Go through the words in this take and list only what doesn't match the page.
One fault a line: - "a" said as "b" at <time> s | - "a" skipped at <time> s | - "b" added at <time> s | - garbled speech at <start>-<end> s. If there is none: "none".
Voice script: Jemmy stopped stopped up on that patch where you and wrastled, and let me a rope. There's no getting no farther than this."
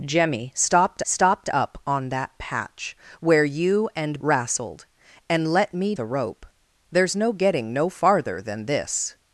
none